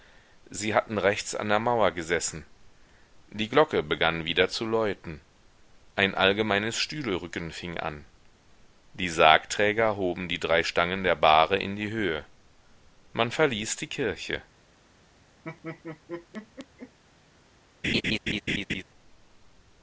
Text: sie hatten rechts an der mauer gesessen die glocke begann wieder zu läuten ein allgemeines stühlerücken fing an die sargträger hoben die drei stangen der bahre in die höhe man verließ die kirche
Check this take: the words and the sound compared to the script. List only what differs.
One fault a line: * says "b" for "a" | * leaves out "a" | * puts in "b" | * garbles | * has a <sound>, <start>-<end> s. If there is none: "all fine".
* has a laugh, 15.4-17.0 s
* has a laugh, 17.8-18.8 s